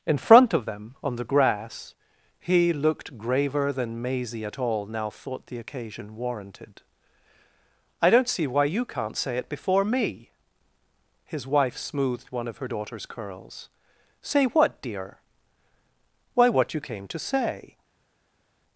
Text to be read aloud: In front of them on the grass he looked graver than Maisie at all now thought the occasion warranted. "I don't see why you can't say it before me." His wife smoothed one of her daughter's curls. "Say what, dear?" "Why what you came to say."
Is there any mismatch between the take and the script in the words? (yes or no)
no